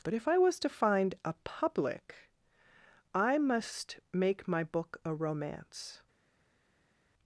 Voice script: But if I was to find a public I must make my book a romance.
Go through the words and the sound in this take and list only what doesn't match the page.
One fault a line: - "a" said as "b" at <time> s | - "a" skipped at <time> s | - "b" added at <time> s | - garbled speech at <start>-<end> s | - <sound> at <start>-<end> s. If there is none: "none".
none